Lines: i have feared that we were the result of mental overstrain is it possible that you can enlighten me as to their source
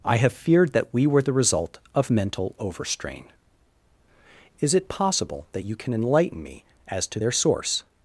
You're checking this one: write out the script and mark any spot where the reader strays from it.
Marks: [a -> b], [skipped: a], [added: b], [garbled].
i have feared that we were the result of mental overstrain is it possible that you can enlighten me as to their source